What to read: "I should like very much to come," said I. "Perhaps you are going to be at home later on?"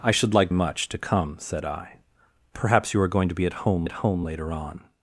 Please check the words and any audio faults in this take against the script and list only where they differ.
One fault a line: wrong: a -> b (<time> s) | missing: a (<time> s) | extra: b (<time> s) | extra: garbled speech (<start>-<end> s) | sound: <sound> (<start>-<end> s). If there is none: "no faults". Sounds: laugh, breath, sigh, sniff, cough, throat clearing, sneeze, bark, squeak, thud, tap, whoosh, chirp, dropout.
missing: very (0.5 s)
extra: at home (3.8 s)